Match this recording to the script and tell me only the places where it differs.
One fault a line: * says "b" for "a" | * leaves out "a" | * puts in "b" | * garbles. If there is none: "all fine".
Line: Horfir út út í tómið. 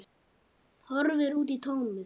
* leaves out "út"